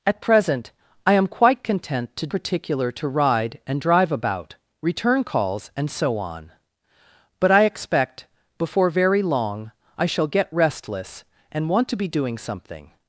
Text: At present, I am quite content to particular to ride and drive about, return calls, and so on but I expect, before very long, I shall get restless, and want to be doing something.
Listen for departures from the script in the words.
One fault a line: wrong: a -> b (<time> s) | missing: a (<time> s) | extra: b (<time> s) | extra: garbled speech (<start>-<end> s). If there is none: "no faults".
no faults